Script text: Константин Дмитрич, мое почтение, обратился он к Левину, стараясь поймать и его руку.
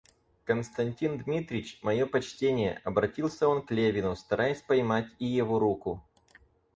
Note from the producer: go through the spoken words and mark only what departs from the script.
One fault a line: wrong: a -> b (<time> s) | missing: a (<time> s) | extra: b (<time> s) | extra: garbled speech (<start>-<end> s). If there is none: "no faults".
no faults